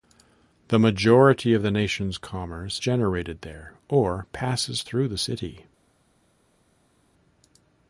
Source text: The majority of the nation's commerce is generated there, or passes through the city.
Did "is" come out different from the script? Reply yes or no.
yes